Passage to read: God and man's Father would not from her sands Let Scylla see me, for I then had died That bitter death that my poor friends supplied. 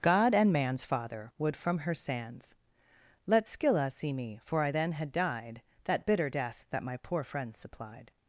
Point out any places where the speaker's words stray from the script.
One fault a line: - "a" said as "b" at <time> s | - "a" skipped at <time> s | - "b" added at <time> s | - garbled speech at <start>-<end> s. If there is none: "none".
- "not" skipped at 1.6 s